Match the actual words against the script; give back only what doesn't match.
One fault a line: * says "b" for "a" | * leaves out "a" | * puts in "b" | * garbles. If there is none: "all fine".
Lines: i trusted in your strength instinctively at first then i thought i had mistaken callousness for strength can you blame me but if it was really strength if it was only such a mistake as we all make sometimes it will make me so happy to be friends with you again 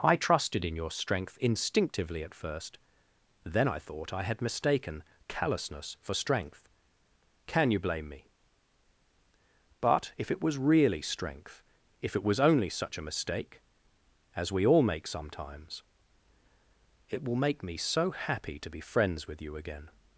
all fine